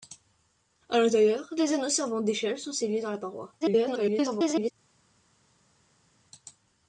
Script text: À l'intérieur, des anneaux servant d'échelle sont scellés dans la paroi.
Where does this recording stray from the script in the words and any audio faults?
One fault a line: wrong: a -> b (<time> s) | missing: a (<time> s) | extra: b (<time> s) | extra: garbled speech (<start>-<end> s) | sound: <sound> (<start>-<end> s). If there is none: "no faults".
extra: garbled speech (3.6-4.7 s)